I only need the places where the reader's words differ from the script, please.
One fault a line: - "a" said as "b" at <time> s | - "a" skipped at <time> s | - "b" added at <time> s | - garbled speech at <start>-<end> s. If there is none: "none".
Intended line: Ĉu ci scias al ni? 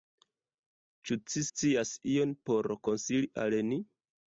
- "ion por konsili" added at 2.2 s